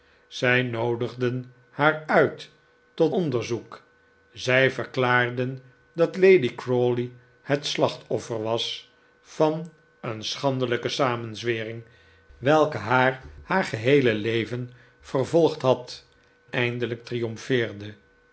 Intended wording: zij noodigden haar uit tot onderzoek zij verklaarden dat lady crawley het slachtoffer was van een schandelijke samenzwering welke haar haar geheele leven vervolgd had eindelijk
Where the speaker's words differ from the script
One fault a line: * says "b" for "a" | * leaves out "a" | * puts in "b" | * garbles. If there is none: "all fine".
all fine